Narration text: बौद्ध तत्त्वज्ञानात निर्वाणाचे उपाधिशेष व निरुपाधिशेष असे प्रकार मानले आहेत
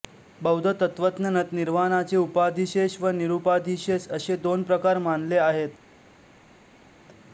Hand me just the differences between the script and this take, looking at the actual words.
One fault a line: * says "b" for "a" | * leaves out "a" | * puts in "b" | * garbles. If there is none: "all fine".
* puts in "दोन"